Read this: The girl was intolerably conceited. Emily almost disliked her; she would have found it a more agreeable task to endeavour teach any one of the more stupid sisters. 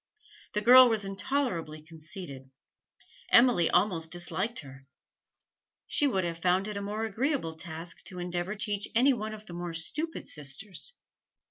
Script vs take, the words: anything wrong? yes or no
no